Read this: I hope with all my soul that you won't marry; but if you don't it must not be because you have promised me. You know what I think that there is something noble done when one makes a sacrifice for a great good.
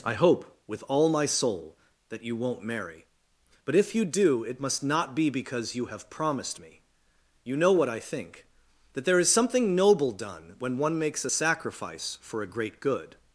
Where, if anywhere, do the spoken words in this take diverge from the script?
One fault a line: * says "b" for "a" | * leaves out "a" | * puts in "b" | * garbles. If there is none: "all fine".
* says "do" for "don't"